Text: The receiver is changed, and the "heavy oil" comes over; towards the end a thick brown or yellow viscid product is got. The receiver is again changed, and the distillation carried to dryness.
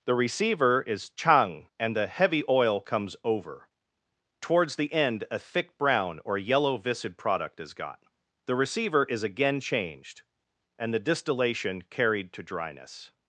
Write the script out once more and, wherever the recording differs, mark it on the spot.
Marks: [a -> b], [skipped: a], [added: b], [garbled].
The receiver is [changed, -> chang] and the "heavy oil" comes over; towards the end a thick brown or yellow viscid product is got. The receiver is again changed, and the distillation carried to dryness.